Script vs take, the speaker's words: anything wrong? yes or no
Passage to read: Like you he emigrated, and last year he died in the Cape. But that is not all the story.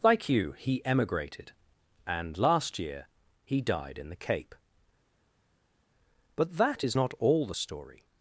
no